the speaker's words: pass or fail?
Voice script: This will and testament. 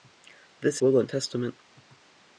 pass